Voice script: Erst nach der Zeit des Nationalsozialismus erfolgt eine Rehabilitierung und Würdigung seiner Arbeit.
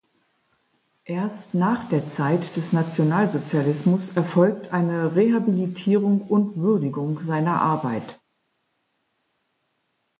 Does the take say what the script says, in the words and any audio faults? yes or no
yes